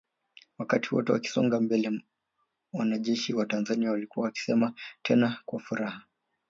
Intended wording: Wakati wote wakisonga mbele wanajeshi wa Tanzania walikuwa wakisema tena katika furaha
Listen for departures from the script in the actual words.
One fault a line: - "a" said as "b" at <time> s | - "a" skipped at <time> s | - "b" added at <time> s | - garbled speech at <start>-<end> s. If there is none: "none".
- "katika" said as "kwa" at 5.4 s